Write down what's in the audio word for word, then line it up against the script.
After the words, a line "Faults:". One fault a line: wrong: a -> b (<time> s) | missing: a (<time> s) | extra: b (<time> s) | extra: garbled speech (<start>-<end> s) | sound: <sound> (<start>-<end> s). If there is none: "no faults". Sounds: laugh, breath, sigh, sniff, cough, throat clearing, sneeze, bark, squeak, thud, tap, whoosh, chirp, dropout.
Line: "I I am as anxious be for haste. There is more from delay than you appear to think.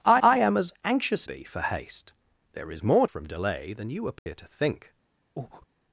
"I I am as anxious be for haste. There is more from delay than you appear to think.
Faults:
sound: dropout (4.2-4.3 s)
sound: breath (5.4-5.7 s)